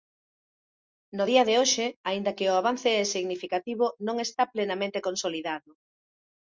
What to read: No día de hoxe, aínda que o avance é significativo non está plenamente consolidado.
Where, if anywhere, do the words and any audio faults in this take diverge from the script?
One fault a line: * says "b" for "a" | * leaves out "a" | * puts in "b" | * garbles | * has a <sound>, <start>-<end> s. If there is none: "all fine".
all fine